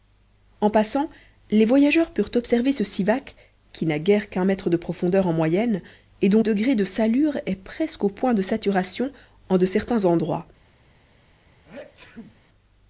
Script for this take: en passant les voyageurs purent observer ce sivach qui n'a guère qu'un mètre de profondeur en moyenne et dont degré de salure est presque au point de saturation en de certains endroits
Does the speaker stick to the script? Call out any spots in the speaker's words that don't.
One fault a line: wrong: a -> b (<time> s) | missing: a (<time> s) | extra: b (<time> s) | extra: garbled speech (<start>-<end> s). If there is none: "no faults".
no faults